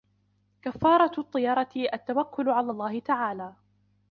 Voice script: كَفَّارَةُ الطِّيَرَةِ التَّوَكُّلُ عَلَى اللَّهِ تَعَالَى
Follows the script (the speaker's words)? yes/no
yes